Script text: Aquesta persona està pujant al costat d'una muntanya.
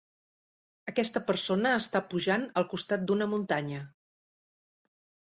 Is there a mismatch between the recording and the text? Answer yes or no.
no